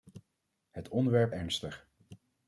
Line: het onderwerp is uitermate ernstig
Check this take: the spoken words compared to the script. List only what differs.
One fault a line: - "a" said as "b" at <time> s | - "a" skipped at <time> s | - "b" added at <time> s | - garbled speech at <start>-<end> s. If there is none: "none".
- "is uitermate" skipped at 1.3 s